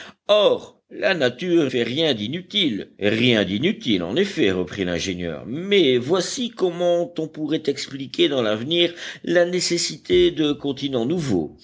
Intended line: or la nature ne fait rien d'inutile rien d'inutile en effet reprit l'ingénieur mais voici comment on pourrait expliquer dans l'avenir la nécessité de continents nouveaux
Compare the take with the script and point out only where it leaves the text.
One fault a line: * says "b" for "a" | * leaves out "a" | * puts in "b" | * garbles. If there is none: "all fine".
* leaves out "ne"